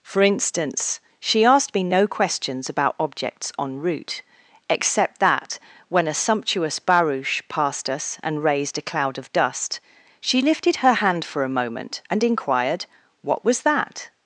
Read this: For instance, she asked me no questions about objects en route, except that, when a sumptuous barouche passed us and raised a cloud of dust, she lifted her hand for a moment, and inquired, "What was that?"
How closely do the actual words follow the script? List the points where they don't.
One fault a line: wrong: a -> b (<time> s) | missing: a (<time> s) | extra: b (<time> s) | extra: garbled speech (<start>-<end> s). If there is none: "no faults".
no faults